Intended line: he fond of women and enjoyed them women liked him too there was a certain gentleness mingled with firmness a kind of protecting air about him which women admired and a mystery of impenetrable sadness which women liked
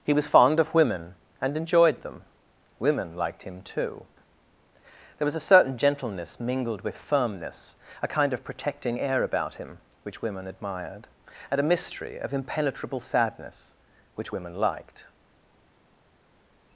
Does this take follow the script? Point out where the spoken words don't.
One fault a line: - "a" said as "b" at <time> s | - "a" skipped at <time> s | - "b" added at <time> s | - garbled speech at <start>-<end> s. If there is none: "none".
- "was" added at 0.1 s